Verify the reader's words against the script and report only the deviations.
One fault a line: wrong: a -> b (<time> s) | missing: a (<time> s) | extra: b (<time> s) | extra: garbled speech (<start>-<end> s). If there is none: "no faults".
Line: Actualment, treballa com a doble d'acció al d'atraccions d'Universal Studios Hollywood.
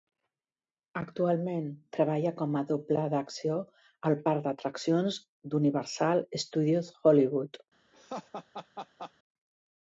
extra: parc (4.3 s)